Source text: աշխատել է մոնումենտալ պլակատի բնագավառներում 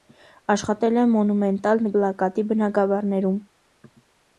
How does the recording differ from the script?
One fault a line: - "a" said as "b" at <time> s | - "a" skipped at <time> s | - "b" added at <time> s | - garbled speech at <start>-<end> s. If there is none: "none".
none